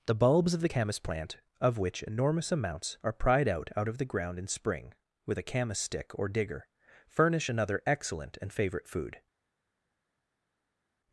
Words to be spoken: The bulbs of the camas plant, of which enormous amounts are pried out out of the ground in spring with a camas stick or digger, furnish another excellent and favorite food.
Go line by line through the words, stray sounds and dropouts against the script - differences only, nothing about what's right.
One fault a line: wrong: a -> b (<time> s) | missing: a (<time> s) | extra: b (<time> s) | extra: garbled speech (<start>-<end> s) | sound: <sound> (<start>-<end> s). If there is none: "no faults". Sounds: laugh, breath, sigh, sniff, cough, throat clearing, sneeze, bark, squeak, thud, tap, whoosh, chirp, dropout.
no faults